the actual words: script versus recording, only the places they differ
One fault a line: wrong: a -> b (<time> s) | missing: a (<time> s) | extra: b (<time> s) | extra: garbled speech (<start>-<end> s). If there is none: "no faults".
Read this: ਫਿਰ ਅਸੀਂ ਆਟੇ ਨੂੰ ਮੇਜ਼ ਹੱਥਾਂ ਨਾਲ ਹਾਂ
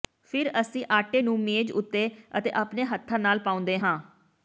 extra: ਉੱਤੇ ਅਤੇ ਆਪਣੇ (1.7 s)
extra: ਪਾਉਂਦੇ (3.4 s)